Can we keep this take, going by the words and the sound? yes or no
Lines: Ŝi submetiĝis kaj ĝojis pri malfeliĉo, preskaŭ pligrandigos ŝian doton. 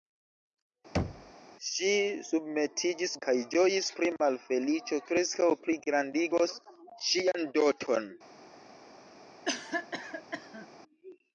no